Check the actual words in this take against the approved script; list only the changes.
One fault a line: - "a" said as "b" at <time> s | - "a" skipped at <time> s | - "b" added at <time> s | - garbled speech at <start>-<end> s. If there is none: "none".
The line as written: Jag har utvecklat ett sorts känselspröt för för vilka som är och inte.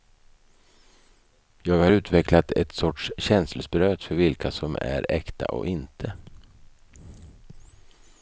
- "för" skipped at 4.2 s
- "äkta" added at 5.1 s